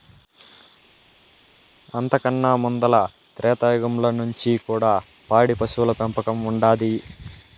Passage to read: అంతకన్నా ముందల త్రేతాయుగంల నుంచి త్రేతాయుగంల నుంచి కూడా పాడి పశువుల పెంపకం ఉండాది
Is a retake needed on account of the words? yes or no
yes